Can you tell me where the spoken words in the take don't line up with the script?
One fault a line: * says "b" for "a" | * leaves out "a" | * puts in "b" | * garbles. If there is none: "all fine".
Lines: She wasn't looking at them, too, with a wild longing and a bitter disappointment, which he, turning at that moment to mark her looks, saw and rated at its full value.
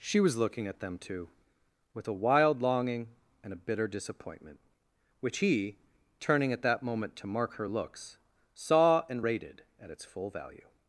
* says "was" for "wasn't"